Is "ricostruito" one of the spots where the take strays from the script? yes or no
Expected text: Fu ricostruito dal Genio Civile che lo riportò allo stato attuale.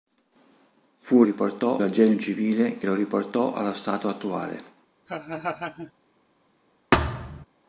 yes